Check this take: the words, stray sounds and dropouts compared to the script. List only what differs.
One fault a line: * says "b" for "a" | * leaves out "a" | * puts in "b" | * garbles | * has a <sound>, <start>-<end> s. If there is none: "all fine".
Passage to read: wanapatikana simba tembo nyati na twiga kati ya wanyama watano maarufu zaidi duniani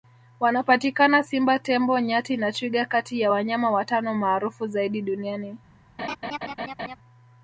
* has a laugh, 6.0-7.0 s